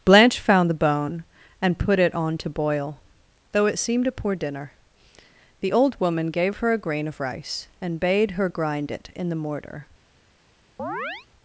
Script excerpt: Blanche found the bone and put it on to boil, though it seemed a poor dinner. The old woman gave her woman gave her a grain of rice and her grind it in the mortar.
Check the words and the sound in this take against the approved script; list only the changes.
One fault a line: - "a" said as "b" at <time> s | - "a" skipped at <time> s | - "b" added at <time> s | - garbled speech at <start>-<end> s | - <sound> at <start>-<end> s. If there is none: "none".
- "woman gave her" skipped at 6.7 s
- "bade" added at 8.0 s
- chirp at 10.8-11.3 s